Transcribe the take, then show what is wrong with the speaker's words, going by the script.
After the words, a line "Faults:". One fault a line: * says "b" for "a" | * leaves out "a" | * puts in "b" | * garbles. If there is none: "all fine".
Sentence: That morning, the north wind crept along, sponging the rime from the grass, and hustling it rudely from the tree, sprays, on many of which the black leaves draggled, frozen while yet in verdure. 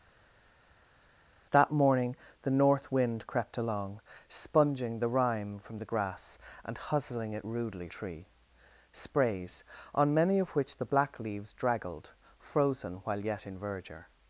That morning, the north wind crept along, sponging the rime from the grass, and hustling it rudely tree, sprays, on many of which the black leaves draggled, frozen while yet in verdure.
Faults:
* leaves out "from the"